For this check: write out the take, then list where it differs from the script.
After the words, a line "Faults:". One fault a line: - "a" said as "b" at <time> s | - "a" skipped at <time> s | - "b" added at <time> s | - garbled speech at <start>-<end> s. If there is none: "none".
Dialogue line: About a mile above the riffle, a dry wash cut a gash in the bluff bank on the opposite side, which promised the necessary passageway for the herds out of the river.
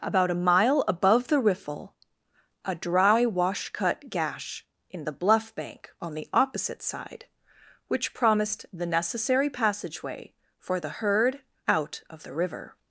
About a mile above the riffle, a dry wash cut gash in the bluff bank on the opposite side, which promised the necessary passageway for the herd out of the river.
Faults:
- "a" skipped at 4.1 s
- "herds" said as "herd" at 10.9 s